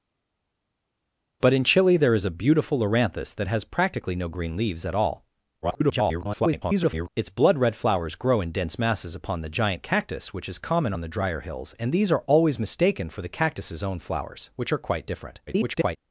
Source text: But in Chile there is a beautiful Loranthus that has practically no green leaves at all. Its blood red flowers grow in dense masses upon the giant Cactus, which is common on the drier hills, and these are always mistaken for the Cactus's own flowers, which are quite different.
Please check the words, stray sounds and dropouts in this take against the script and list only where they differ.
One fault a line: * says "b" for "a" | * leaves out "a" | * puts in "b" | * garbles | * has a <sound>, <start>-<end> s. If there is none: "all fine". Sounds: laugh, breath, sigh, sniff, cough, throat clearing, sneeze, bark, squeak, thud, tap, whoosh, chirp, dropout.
* garbles
* garbles